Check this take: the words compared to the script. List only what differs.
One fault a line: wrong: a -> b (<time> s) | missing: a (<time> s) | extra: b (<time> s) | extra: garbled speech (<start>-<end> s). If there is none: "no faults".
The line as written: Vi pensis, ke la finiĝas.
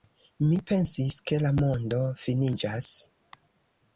wrong: Vi -> Mi (0.4 s)
extra: mondo (1.6 s)